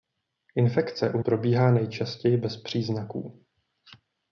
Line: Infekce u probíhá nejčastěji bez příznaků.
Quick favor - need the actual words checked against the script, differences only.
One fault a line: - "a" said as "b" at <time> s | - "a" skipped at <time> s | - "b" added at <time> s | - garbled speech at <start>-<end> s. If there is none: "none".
none